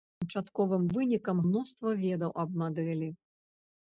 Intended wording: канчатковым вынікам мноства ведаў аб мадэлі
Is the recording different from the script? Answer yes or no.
no